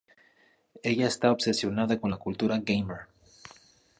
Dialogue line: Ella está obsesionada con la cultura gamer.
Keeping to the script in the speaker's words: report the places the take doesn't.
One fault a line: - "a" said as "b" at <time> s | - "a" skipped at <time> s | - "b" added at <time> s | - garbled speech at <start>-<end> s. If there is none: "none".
none